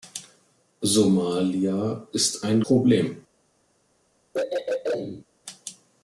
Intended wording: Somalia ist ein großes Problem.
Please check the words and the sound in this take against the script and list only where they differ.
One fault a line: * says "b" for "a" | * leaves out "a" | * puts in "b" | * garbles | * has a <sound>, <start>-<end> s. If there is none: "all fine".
* leaves out "großes"
* has a throat clearing, 4.3-5.3 s